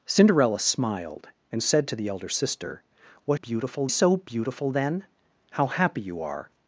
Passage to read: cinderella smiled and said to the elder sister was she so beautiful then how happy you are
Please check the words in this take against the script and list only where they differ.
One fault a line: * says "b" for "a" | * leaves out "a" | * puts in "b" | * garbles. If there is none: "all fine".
* says "beautiful" for "she"